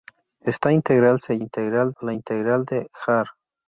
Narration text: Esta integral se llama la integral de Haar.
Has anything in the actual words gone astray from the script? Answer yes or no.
yes